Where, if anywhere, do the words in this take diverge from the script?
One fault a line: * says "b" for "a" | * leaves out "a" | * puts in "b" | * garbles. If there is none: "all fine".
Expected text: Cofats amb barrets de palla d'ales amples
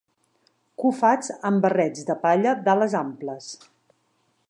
all fine